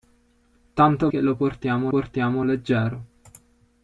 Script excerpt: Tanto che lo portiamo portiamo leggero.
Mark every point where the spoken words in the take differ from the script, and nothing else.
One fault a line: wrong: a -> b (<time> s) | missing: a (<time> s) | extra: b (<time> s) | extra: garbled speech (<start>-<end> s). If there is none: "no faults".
no faults